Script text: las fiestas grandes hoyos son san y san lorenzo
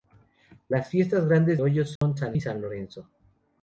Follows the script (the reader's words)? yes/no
yes